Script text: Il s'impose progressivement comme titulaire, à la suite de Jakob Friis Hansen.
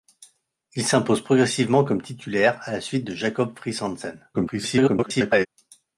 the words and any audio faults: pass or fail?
fail